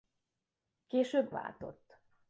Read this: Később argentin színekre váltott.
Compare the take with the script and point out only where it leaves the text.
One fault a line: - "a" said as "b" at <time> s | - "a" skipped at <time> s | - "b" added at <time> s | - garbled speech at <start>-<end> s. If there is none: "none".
- "argentin színekre" skipped at 1.3 s